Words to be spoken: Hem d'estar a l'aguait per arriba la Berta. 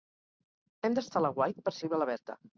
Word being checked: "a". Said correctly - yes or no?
yes